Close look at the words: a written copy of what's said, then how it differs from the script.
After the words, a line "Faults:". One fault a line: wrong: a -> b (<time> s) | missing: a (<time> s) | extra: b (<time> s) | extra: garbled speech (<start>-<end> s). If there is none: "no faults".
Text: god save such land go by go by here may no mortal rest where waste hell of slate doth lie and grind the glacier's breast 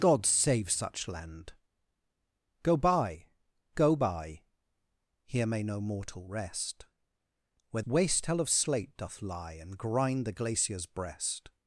god save such land go by go by here may no mortal rest where waste hell of slate doth lie and grind the glacier's breast
Faults:
no faults